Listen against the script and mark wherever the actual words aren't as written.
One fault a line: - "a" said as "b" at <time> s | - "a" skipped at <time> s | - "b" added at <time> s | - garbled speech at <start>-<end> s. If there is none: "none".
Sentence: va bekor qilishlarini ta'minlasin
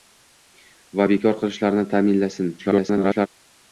- garbled speech at 2.6-3.3 s